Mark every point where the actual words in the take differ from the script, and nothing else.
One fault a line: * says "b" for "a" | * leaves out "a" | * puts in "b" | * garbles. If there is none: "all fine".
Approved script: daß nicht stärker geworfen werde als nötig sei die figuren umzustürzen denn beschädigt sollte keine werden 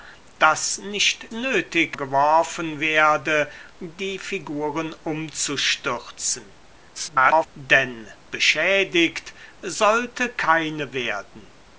* says "nötig" for "stärker"
* leaves out "als nötig sei"
* garbles